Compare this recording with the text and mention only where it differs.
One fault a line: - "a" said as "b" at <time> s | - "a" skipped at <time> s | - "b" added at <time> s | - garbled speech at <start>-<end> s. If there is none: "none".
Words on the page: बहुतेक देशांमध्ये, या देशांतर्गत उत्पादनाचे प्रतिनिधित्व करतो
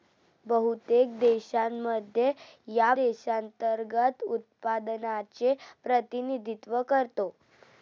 none